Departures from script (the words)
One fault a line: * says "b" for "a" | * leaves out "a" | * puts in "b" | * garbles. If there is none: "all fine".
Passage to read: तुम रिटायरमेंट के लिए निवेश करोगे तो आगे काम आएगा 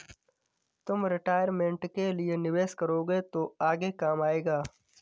all fine